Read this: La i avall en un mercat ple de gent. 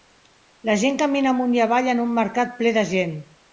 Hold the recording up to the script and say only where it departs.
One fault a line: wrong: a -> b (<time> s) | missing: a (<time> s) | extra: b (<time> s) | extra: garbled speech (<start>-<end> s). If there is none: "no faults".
extra: gent camina amunt (0.8 s)